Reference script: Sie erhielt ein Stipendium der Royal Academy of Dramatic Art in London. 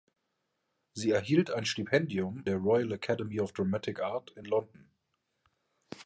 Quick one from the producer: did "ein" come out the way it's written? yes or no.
yes